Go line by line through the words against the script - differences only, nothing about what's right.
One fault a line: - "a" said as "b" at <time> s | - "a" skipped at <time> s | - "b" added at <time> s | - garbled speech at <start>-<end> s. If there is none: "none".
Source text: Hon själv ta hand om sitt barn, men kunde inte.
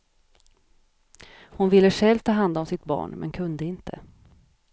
- "ville" added at 1.7 s